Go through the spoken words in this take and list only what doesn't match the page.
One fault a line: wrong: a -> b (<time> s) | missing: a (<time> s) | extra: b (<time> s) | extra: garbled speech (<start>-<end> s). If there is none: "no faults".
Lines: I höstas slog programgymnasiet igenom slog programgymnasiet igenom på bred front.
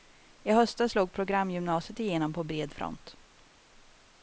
missing: slog programgymnasiet igenom (2.3 s)